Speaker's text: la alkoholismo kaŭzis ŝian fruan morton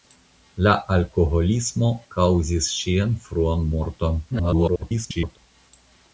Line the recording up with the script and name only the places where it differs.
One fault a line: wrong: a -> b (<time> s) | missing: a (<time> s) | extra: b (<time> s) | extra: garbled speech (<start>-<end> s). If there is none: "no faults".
extra: garbled speech (4.3-5.4 s)